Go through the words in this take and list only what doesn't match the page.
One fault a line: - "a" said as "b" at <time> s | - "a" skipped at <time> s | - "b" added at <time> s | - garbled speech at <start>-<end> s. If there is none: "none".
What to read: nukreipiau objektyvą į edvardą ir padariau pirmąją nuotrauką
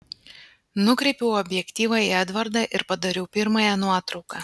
none